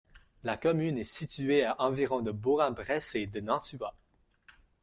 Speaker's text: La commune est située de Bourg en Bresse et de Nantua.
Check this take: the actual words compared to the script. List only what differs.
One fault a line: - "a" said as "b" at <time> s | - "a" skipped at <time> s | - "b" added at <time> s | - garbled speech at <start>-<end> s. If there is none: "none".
- "à environ" added at 1.6 s